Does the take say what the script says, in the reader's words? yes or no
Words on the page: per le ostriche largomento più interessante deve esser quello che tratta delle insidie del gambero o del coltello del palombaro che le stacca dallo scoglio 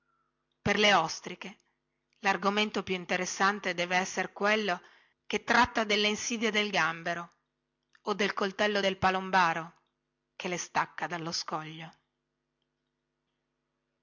yes